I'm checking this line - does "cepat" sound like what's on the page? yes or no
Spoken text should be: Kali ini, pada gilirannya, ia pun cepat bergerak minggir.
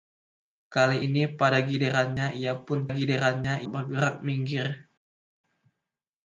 no